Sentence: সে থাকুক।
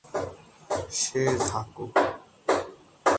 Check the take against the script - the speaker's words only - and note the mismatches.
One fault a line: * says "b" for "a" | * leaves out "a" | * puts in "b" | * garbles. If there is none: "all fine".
all fine